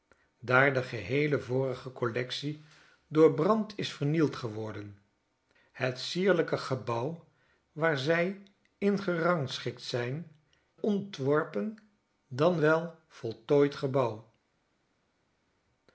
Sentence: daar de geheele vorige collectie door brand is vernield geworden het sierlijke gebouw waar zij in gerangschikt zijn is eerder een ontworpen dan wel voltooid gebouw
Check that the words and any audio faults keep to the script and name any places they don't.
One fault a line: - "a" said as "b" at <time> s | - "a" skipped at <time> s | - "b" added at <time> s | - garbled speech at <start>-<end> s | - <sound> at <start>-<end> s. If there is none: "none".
- "is eerder een" skipped at 10.3 s